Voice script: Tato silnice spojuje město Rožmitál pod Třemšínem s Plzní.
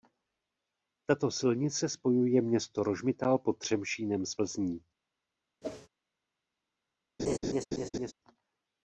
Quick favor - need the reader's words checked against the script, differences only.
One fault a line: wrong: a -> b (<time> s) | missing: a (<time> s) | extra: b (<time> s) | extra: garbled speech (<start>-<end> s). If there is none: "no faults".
no faults